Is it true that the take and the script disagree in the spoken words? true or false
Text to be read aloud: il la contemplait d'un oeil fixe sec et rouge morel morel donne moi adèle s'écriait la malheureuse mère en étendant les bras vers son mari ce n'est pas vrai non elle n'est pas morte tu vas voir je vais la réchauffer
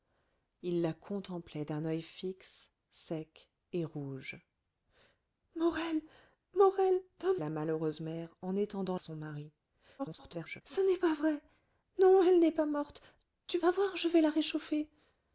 true